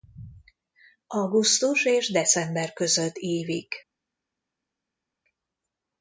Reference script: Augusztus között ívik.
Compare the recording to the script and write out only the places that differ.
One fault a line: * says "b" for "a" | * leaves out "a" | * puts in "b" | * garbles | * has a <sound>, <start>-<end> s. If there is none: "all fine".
* puts in "és december"